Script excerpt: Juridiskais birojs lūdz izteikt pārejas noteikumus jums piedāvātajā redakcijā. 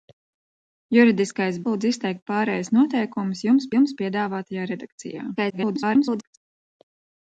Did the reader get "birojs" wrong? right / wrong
wrong